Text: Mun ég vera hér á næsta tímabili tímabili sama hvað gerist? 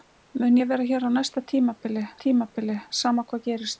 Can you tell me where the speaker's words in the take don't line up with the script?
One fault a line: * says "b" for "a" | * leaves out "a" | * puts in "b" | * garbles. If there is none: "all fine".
all fine